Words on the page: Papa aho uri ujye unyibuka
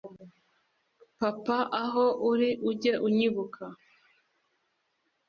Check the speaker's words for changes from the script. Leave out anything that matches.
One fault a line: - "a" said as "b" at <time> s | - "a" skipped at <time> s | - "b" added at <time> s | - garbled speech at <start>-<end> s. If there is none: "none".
none